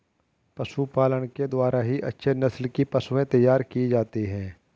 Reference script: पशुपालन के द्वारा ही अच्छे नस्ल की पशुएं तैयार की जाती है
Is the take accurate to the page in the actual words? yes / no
yes